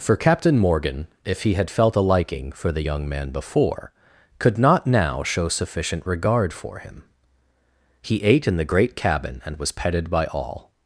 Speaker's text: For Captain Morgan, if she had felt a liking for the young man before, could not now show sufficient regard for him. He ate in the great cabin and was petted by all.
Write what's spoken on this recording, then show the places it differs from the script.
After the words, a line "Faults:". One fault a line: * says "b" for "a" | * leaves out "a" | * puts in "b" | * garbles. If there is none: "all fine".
For Captain Morgan, if he had felt a liking for the young man before, could not now show sufficient regard for him. He ate in the great cabin and was petted by all.
Faults:
* says "he" for "she"